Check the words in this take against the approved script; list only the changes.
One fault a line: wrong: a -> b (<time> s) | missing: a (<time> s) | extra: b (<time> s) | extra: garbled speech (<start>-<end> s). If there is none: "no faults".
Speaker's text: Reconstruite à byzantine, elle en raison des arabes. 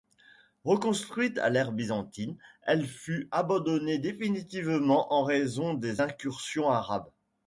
extra: l'ère (1.5 s)
extra: fut abandonnée définitivement (2.9 s)
extra: incursions (6.0 s)